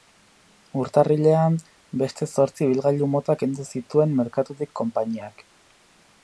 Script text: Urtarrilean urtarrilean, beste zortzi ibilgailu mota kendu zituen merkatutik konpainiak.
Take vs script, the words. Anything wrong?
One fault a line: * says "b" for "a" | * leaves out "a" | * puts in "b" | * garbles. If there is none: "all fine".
* leaves out "urtarrilean"